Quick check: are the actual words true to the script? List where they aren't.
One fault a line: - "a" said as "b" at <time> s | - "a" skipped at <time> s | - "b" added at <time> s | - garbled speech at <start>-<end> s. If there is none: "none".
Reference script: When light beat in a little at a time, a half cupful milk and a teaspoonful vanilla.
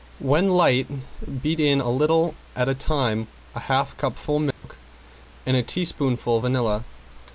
none